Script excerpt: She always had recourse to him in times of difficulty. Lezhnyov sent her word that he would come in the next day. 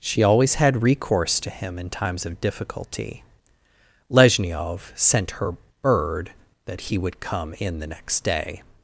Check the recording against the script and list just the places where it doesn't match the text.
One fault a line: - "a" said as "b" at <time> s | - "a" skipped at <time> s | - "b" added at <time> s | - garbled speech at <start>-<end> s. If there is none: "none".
- "word" said as "bird" at 5.8 s